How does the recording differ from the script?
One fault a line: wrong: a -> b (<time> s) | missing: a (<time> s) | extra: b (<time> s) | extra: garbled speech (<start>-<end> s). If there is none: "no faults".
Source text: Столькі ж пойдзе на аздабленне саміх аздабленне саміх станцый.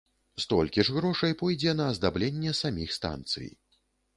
extra: грошай (0.9 s)
missing: аздабленне саміх (2.9 s)